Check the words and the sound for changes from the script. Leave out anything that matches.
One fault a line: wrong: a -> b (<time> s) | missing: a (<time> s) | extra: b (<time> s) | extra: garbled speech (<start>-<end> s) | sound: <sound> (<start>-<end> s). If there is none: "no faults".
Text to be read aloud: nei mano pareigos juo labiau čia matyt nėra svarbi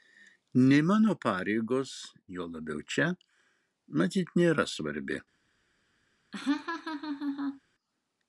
sound: laugh (6.3-7.6 s)